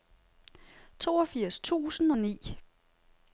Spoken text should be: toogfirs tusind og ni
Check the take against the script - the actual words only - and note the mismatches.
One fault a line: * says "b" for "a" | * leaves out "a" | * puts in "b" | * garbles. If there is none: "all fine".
all fine